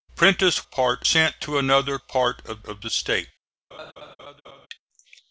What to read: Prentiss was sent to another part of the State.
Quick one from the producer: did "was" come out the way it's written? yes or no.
no